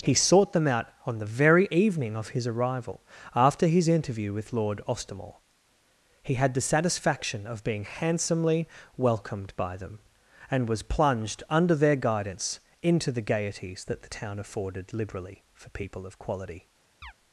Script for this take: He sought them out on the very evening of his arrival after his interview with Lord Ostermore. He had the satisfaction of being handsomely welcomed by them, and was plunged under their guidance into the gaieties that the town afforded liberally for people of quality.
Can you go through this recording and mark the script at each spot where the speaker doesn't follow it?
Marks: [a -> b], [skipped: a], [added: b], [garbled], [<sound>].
He sought them out on the very evening of his arrival after his interview with Lord Ostermore. He had the satisfaction of being handsomely welcomed by them, and was plunged under their guidance into the gaieties that the town afforded liberally for people of quality. [chirp]